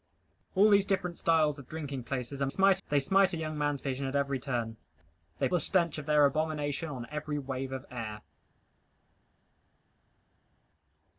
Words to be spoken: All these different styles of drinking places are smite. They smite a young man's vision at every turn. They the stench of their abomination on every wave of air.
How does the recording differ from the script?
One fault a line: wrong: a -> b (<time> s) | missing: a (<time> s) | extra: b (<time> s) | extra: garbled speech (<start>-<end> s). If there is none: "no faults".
no faults